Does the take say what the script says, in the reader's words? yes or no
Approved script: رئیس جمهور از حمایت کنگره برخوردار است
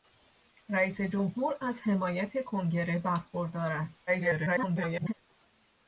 no